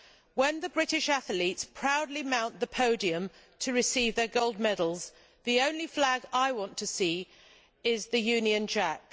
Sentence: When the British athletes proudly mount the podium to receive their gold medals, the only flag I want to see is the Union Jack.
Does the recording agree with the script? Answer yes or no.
yes